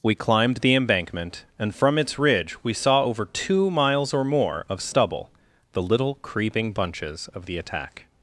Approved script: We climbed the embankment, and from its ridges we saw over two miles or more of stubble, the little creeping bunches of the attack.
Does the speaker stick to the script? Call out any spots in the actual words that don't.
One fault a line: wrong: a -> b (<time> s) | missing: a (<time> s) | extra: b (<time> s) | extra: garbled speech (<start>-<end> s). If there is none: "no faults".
wrong: ridges -> ridge (2.2 s)